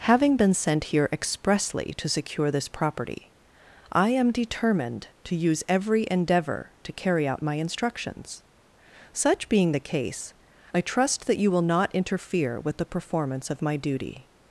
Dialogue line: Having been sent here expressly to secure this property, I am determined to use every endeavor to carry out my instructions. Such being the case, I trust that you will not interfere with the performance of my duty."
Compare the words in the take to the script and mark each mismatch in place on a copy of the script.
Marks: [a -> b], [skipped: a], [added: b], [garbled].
Having been sent here expressly to secure this property, I am determined to use every endeavor to carry out my instructions. Such being the case, I trust that you will not interfere with the performance of my duty."